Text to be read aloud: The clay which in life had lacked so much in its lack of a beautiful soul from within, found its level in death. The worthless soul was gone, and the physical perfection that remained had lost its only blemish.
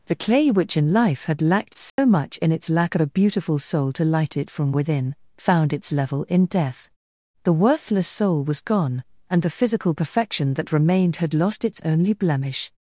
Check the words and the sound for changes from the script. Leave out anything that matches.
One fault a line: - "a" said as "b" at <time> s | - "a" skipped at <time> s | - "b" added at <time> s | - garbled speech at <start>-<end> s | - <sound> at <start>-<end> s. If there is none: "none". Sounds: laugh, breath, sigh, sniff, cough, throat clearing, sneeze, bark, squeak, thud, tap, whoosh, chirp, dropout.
- dropout at 1.9-2.0 s
- "to light it" added at 3.9 s